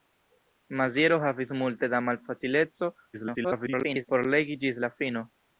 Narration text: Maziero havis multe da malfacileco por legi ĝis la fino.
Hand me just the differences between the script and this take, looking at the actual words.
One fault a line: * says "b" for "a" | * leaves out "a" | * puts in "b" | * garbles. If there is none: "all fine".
* garbles